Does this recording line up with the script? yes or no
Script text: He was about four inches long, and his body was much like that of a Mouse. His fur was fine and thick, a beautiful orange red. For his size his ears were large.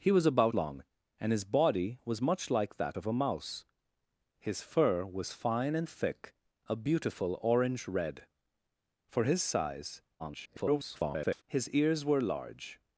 no